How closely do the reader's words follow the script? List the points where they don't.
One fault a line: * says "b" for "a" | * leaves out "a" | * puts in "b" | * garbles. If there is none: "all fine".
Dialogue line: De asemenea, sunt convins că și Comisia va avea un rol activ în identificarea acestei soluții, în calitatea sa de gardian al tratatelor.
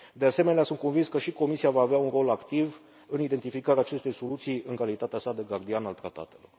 all fine